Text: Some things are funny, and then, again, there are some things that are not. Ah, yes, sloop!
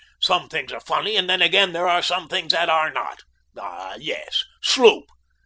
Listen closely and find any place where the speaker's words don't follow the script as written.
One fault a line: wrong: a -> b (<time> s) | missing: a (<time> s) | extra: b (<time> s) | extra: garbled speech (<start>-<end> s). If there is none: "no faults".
no faults